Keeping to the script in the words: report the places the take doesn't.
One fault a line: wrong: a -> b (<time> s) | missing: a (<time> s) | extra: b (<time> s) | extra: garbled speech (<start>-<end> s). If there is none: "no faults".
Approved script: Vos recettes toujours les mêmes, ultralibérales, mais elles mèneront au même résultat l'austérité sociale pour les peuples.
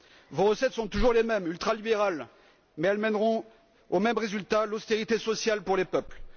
extra: sont (0.7 s)